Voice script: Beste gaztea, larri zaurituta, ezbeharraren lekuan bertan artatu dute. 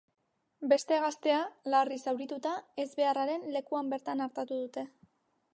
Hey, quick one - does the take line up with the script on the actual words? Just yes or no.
yes